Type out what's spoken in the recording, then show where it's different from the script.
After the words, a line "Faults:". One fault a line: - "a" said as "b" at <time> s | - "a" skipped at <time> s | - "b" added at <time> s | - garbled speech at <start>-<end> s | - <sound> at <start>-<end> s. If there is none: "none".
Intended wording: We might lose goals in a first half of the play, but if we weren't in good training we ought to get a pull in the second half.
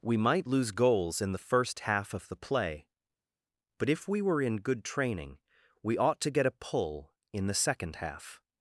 We might lose goals in the first half of the play, but if we were in good training we ought to get a pull in the second half.
Faults:
- "a" said as "the" at 1.3 s
- "weren't" said as "were" at 4.2 s